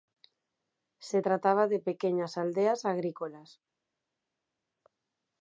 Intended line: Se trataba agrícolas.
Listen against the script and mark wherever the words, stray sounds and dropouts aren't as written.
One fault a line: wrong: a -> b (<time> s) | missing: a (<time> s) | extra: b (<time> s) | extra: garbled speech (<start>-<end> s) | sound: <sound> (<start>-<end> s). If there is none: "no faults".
extra: de pequeñas aldeas (1.7 s)